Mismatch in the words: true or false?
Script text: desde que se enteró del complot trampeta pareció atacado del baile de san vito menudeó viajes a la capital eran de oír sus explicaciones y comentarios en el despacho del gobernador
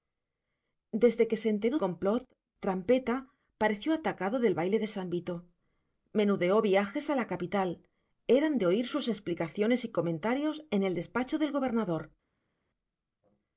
true